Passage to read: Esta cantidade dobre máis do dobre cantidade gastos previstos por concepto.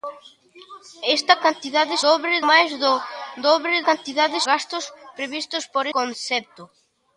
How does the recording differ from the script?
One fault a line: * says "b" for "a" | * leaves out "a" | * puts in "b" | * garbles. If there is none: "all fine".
all fine